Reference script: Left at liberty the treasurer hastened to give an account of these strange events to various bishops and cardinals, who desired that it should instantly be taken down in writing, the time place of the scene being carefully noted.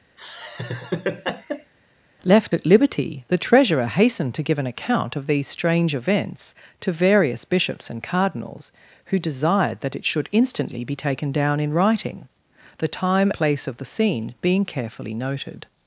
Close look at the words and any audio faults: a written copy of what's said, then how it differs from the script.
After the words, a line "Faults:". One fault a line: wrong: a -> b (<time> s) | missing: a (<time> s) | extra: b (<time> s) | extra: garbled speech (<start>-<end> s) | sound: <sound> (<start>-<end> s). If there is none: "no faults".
Left at liberty the treasurer hastened to give an account of these strange events to various bishops and cardinals, who desired that it should instantly be taken down in writing, the time place of the scene being carefully noted.
Faults:
sound: laugh (0.2-1.7 s)